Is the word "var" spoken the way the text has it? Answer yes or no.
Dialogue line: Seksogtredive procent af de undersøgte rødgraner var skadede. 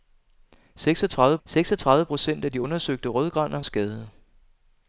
no